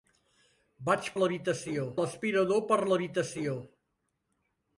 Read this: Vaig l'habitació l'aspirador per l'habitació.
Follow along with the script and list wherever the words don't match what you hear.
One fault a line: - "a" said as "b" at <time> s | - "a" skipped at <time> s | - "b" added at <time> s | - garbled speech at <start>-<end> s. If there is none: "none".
none